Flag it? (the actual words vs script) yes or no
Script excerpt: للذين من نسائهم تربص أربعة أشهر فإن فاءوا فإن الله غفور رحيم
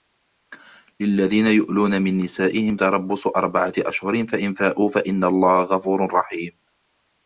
yes